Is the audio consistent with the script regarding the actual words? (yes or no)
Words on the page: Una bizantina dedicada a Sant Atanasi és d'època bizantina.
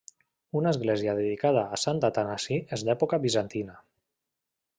no